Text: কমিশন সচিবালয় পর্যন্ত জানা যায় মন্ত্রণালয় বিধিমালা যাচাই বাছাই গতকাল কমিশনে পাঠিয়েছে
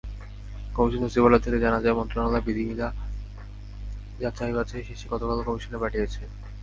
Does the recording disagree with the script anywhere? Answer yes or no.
yes